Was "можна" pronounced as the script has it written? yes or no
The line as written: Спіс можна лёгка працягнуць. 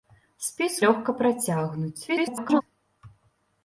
no